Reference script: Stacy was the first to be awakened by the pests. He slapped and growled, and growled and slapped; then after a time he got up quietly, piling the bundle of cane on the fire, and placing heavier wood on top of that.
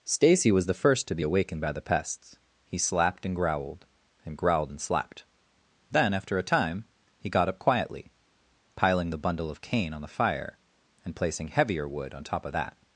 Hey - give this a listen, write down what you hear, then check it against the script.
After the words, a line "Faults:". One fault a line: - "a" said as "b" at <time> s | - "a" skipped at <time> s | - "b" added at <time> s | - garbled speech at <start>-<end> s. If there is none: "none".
Stacy was the first to be awakened by the pests. He slapped and growled, and growled and slapped; then after a time he got up quietly, piling the bundle of cane on the fire, and placing heavier wood on top of that.
Faults:
none